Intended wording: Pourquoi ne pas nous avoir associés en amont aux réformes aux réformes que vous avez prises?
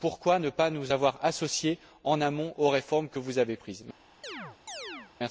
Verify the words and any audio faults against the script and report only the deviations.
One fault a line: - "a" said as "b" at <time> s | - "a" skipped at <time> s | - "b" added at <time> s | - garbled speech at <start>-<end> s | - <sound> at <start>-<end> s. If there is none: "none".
- "aux réformes" skipped at 3.1 s
- chirp at 4.2-5.1 s